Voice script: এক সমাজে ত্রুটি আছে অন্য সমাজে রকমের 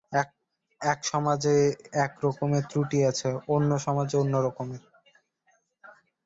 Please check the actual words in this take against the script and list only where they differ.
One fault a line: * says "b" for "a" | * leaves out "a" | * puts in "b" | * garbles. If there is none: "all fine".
* puts in "এক রকমের"
* puts in "অন্য"